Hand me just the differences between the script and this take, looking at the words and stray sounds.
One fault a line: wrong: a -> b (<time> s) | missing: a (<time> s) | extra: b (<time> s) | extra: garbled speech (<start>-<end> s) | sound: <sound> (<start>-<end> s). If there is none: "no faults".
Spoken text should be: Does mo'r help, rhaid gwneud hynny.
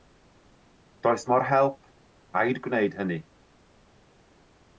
no faults